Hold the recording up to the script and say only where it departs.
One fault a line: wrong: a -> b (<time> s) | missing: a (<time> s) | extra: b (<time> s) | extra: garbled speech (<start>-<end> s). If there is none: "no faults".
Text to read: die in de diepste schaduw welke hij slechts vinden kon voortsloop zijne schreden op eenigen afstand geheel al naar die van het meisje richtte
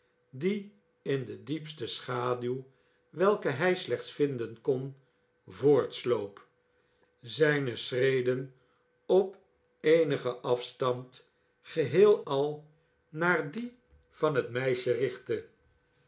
no faults